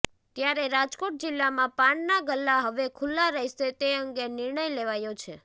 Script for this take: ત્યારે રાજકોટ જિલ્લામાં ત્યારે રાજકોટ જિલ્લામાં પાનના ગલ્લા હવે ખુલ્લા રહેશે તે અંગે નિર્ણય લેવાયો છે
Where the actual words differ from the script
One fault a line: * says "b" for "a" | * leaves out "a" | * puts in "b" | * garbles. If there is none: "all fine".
* leaves out "ત્યારે રાજકોટ જિલ્લામાં"